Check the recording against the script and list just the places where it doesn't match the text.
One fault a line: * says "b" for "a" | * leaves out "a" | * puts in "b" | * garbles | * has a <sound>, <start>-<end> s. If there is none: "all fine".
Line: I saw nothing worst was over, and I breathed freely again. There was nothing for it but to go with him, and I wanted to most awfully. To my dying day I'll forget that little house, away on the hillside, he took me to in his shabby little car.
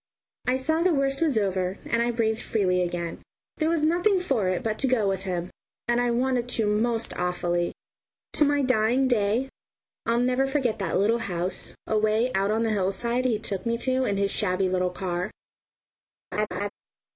* says "the" for "nothing"
* puts in "never"
* puts in "out"
* has a laugh, 16.3-16.7 s